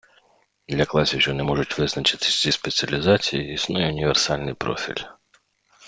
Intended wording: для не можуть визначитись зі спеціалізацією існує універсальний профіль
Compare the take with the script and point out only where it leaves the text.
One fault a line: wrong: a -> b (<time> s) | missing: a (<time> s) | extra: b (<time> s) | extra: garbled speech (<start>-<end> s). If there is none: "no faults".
extra: класів що (0.8 s)